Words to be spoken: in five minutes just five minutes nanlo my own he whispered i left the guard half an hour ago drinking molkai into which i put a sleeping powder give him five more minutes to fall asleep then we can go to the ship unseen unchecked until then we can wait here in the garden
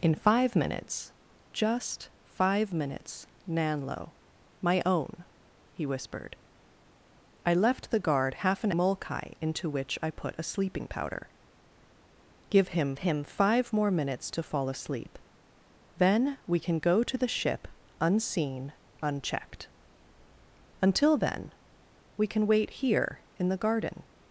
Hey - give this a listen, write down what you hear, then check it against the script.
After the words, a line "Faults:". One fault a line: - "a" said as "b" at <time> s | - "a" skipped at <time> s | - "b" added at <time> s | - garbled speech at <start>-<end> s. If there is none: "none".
in five minutes just five minutes nanlo my own he whispered i left the guard half an molkai into which i put a sleeping powder give him him five more minutes to fall asleep then we can go to the ship unseen unchecked until then we can wait here in the garden
Faults:
- "hour ago drinking" skipped at 8.7 s
- "him" added at 13.0 s